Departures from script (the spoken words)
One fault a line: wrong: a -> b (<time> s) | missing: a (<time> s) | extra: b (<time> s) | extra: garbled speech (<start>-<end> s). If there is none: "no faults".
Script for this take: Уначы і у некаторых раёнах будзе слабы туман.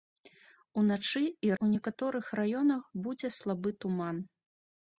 no faults